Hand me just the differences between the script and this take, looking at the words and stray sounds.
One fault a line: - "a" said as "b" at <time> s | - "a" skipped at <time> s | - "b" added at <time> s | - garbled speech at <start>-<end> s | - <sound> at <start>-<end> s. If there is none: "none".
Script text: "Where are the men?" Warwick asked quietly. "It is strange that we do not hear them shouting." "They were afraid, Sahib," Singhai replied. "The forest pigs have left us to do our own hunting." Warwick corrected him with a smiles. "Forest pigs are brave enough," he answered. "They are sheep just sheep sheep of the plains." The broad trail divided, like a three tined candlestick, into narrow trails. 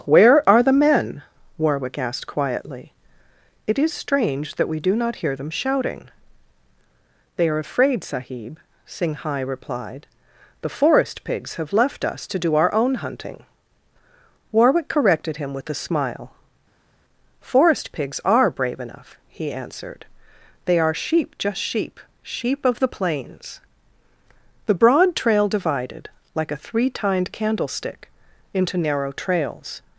- "were" said as "are" at 7.5 s
- "smiles" said as "smile" at 15.8 s